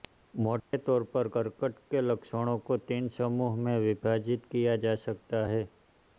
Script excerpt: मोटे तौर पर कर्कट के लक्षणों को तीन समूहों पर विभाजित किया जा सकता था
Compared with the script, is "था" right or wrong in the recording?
wrong